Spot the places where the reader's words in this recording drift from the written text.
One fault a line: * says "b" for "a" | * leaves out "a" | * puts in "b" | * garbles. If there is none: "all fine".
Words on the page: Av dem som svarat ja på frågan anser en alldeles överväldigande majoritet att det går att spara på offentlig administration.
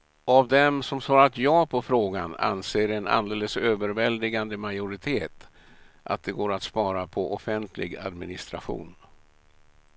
all fine